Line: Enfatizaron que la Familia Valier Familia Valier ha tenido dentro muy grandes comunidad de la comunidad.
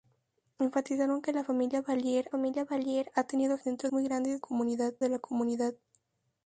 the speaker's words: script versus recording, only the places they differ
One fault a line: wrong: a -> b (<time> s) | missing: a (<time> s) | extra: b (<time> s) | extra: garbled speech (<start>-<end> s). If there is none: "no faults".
no faults